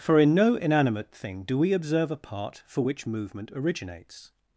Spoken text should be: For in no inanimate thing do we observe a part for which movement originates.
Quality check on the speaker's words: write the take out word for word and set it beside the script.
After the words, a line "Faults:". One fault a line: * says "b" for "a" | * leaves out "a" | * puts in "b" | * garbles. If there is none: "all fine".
For in no inanimate thing do we observe a part for which movement originates.
Faults:
all fine